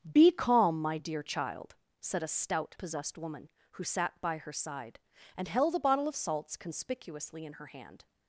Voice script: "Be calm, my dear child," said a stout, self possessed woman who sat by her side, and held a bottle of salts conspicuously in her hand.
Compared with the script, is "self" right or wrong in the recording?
wrong